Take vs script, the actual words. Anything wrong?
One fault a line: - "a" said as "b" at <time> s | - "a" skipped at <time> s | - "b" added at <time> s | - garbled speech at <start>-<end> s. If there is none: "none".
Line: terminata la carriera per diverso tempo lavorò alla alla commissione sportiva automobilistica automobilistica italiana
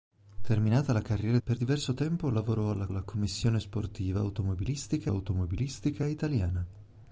none